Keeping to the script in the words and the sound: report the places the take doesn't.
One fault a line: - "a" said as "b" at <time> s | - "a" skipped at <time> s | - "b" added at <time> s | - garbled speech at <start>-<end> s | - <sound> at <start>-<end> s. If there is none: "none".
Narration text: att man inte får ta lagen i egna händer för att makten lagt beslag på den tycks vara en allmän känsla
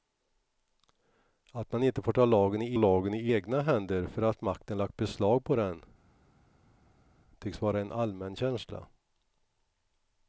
- "lagen i" added at 2.8 s